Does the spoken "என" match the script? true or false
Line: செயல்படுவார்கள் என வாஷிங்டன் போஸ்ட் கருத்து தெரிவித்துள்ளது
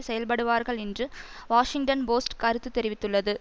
false